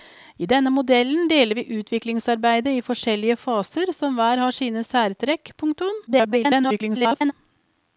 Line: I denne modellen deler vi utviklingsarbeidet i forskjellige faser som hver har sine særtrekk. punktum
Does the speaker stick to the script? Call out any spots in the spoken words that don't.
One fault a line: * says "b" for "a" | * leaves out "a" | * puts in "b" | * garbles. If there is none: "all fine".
* garbles